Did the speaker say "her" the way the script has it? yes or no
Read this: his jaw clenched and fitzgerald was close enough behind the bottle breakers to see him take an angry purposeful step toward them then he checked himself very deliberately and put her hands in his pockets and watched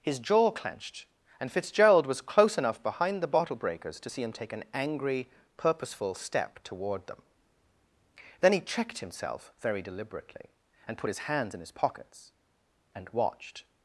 no